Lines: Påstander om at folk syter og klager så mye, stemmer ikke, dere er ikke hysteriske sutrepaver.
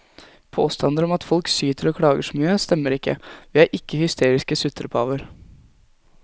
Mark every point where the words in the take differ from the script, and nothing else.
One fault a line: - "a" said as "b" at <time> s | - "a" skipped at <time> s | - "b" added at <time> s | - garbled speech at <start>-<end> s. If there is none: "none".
- "dere" said as "vi" at 3.5 s